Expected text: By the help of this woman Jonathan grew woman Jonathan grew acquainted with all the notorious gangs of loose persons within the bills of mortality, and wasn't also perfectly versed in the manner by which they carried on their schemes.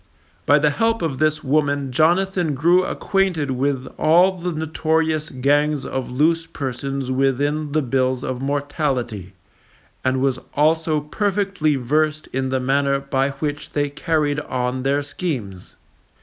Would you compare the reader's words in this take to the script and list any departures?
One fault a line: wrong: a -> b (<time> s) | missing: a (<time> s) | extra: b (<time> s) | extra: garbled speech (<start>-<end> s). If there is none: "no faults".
missing: woman Jonathan grew (2.8 s)
wrong: wasn't -> was (10.2 s)